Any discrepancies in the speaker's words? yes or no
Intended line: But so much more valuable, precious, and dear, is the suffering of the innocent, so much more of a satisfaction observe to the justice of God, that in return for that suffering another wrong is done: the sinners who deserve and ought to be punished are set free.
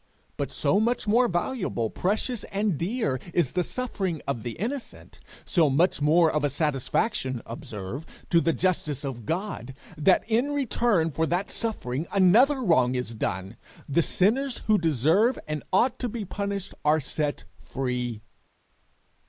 no